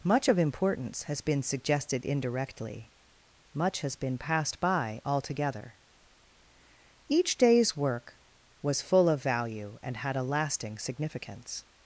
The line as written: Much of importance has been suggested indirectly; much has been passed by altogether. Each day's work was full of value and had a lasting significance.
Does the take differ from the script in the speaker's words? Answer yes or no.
no